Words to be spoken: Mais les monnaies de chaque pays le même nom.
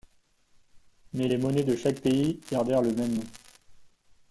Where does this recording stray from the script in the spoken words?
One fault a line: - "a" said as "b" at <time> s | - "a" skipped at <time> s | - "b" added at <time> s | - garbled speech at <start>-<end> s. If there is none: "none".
- "gardèrent" added at 2.5 s